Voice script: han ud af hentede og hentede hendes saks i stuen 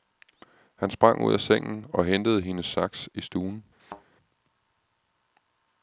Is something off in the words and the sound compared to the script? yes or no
yes